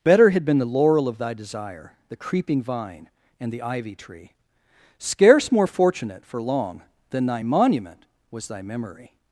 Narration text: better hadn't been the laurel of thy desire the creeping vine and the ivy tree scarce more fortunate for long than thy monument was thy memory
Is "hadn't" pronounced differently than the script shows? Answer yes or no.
yes